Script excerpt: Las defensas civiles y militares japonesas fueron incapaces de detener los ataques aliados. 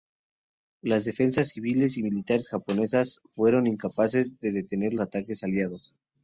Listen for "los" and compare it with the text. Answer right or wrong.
wrong